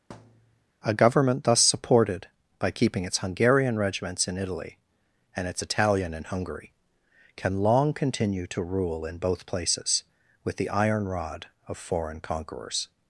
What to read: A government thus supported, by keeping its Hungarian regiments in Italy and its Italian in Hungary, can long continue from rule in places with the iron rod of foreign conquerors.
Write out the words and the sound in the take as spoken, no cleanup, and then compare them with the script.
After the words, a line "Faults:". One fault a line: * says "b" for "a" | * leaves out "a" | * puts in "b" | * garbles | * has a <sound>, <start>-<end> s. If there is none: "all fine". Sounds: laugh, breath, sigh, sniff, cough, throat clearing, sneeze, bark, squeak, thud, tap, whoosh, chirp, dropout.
A government thus supported, by keeping its Hungarian regiments in Italy and its Italian in Hungary, can long continue to rule in both places with the iron rod of foreign conquerors.
Faults:
* has a thud, 0.1-0.7 s
* says "to" for "from"
* puts in "both"